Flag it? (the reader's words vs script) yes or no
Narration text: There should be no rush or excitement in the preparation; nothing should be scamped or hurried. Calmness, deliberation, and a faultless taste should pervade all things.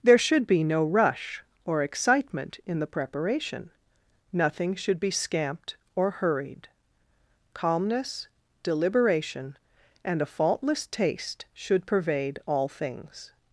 no